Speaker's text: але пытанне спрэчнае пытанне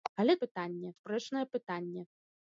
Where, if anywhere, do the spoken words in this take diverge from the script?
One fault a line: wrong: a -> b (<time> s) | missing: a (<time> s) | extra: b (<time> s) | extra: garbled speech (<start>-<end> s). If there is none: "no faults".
no faults